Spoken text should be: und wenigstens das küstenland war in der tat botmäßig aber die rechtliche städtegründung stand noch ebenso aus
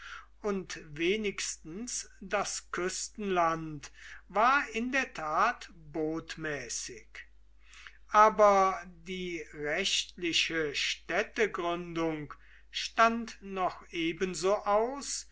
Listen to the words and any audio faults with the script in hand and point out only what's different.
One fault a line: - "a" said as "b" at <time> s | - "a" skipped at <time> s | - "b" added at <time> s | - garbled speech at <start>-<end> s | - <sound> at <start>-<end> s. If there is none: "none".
none